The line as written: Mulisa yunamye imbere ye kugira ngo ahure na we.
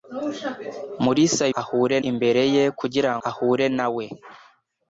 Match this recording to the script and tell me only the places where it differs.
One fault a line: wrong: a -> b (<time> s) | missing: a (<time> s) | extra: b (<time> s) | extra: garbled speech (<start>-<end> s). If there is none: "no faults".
wrong: yunamye -> ahure (1.6 s)
missing: ngo (3.1 s)